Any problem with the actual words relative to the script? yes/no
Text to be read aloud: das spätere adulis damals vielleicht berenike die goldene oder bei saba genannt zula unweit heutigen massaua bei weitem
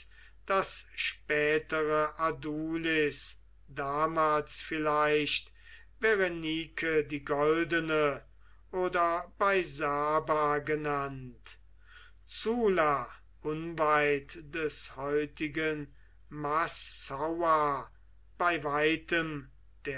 yes